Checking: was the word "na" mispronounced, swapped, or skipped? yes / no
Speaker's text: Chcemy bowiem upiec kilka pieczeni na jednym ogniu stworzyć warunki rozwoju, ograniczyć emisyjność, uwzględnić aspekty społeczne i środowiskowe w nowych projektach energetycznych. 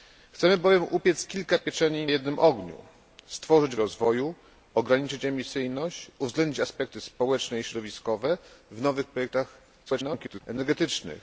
yes